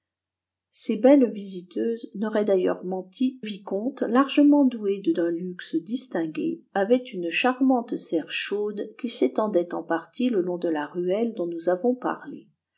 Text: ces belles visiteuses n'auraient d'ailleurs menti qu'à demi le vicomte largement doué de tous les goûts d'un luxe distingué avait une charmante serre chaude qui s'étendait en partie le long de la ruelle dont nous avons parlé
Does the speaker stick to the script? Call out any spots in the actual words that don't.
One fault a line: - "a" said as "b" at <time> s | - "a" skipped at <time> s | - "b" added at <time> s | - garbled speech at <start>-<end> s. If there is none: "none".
- "qu'à demi le" skipped at 3.4 s
- "tous les goûts" skipped at 5.1 s